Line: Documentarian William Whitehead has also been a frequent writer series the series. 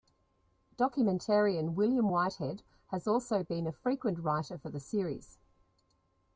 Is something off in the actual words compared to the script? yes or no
yes